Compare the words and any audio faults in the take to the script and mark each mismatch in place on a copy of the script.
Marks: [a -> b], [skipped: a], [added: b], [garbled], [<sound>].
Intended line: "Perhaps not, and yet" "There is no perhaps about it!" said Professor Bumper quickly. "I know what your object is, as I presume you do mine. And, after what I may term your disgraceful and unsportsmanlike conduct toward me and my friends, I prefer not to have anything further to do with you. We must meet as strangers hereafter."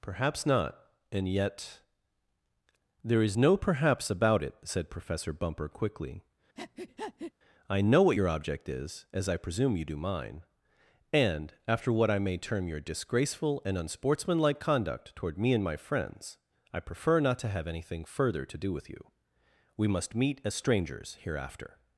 "Perhaps not, and yet" "There is no perhaps about it!" said Professor Bumper quickly. [breath] "I know what your object is, as I presume you do mine. And, after what I may term your disgraceful and unsportsmanlike conduct toward me and my friends, I prefer not to have anything further to do with you. We must meet as strangers hereafter."